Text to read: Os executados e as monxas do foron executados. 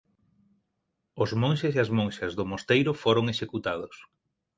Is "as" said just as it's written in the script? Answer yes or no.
yes